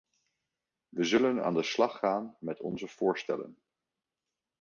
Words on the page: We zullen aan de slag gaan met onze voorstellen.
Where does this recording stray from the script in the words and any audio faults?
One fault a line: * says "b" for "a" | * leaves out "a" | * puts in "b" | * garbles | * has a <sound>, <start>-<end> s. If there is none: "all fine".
all fine